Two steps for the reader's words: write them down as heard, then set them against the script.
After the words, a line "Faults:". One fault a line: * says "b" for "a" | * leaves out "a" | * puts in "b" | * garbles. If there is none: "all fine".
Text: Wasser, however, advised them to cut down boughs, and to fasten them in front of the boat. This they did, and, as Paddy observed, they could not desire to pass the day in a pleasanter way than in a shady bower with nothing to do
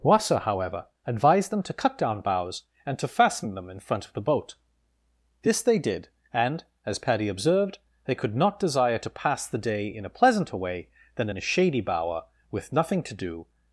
Wasser, however, advised them to cut down boughs, and to fasten them in front of the boat. This they did, and, as Paddy observed, they could not desire to pass the day in a pleasanter way than in a shady bower with nothing to do
Faults:
all fine